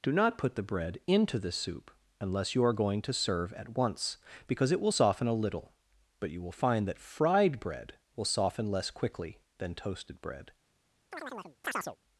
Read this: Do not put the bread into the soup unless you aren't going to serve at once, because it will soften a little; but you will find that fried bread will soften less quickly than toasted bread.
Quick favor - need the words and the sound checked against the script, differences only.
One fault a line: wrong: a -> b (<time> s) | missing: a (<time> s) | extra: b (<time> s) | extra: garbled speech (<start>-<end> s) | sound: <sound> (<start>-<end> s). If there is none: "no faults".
wrong: aren't -> are (2.6 s)
sound: chirp (11.1-12.0 s)